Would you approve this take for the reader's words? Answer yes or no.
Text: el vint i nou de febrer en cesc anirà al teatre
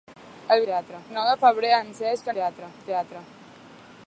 no